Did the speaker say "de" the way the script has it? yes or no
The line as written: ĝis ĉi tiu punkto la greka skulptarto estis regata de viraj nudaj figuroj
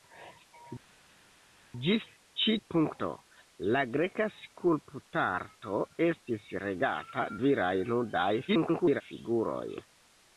no